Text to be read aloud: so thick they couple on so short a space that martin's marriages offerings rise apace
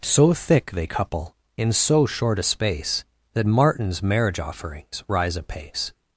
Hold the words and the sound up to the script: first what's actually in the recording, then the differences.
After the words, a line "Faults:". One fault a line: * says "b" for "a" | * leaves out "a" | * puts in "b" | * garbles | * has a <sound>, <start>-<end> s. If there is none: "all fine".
so thick they couple in so short a space that martin's marriage offerings rise apace
Faults:
* says "in" for "on"
* says "marriage" for "marriages"